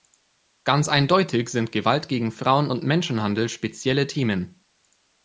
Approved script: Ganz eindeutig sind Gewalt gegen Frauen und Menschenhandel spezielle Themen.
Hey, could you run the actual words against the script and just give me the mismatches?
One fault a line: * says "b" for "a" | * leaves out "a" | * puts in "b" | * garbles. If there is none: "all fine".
all fine